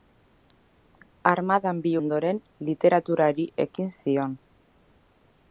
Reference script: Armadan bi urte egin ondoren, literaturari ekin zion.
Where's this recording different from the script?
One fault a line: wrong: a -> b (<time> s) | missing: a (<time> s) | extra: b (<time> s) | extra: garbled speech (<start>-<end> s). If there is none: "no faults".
missing: urte egin (1.9 s)